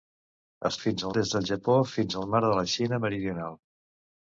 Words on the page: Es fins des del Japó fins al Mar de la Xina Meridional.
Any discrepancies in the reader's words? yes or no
no